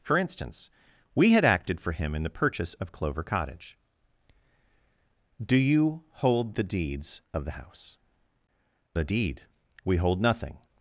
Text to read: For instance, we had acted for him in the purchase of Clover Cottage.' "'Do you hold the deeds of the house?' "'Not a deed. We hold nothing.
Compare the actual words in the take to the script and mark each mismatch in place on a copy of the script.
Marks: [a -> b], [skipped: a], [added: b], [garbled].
For instance, we had acted for him in the purchase of Clover Cottage.' "'Do you hold the deeds of the house?' [skipped: "'Not] a deed. We hold nothing.